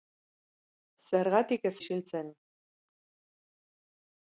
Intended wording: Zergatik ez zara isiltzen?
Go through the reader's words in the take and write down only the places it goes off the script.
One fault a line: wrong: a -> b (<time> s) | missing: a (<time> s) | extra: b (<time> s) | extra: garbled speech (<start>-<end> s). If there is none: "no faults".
missing: zara (1.7 s)